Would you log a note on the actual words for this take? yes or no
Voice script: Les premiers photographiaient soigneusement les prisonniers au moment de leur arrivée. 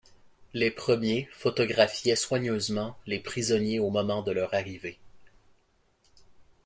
no